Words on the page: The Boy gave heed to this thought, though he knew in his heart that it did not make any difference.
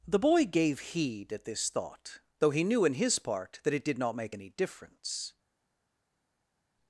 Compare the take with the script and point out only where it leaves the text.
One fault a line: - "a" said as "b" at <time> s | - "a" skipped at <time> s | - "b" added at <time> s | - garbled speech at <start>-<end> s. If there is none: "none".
- "to" said as "at" at 1.3 s
- "heart" said as "part" at 3.2 s